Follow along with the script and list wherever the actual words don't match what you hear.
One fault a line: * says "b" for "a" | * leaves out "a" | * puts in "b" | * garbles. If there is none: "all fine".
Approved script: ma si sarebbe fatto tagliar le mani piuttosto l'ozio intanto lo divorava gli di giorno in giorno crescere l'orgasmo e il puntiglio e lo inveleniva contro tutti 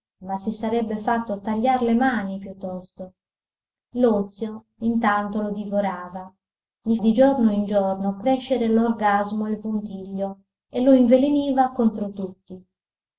all fine